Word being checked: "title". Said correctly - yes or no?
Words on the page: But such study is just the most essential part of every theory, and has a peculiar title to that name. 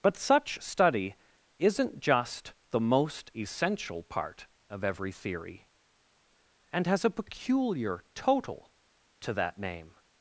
no